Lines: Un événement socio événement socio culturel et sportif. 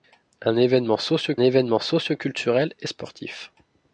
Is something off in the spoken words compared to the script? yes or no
no